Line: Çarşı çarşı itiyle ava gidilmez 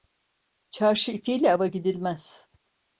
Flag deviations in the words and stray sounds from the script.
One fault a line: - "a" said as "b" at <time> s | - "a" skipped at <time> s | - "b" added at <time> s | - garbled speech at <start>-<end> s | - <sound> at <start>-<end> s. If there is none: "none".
- "çarşı" skipped at 1.1 s